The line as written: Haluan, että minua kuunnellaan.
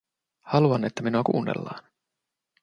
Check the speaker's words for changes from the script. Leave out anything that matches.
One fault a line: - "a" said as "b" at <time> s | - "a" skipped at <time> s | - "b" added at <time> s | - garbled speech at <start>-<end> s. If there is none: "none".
none